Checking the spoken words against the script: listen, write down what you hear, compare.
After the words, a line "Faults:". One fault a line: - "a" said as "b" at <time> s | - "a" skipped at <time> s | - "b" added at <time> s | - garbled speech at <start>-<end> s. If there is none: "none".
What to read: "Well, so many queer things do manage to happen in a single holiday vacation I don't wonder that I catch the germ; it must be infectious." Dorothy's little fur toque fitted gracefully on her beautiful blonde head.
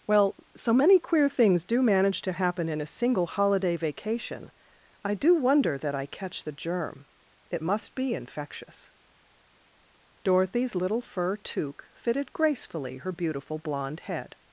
"Well, so many queer things do manage to happen in a single holiday vacation I do wonder that I catch the germ; it must be infectious." Dorothy's little fur toque fitted gracefully her beautiful blonde head.
Faults:
- "don't" said as "do" at 5.1 s
- "on" skipped at 13.0 s